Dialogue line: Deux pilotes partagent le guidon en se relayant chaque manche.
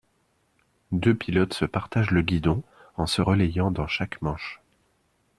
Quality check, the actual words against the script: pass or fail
fail